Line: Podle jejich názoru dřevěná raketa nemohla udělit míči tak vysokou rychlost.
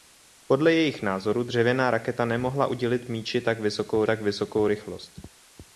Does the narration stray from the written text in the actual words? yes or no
yes